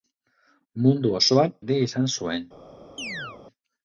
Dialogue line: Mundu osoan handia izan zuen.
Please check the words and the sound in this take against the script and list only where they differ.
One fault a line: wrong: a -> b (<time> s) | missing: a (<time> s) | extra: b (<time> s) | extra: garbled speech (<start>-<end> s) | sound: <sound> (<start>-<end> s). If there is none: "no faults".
sound: chirp (3.0-3.4 s)